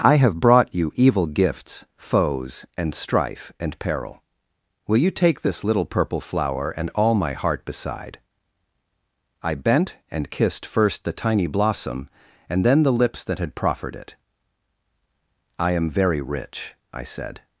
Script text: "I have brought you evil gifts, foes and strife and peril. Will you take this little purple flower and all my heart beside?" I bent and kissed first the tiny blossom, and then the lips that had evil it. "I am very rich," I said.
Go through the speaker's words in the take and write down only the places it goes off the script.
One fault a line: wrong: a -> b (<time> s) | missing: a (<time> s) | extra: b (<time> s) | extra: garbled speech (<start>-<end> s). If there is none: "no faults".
wrong: evil -> proffered (13.5 s)